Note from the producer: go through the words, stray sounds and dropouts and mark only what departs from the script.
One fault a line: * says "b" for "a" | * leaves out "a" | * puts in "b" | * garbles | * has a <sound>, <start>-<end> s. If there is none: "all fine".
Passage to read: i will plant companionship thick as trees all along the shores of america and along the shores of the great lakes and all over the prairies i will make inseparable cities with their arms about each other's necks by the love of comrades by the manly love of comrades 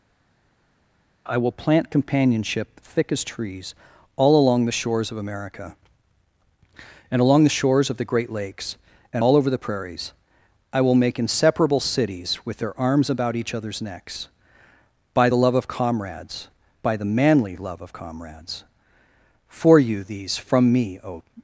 * puts in "for you these from me o"